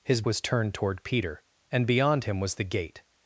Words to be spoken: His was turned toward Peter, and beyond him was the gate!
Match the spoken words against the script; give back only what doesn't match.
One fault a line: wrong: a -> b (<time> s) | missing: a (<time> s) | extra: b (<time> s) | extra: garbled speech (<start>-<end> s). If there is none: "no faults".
no faults